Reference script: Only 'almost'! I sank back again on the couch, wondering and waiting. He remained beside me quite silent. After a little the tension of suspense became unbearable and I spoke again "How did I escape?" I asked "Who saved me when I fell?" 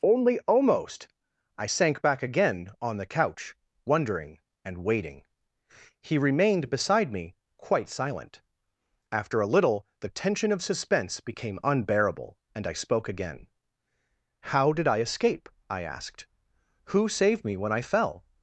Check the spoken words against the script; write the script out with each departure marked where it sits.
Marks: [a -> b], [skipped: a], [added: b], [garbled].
Only 'almost'! I sank back again on the couch, wondering and waiting. He remained beside me quite silent. After a little the tension of suspense became unbearable and I spoke again "How did I escape?" I asked "Who saved me when I fell?"